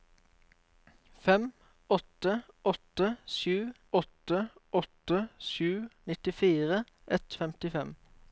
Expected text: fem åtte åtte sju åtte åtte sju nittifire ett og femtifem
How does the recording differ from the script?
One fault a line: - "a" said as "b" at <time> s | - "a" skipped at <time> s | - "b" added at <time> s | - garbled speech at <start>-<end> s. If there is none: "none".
none